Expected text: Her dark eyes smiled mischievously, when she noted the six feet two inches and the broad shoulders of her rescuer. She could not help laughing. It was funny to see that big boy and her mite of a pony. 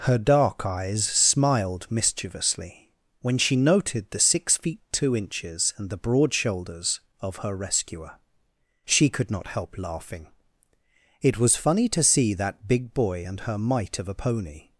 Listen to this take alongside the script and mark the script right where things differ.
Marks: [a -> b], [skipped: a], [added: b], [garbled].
Her dark eyes smiled mischievously, when she noted the six feet two inches and the broad shoulders of her rescuer. She could not help laughing. It was funny to see that big boy and her mite of a pony.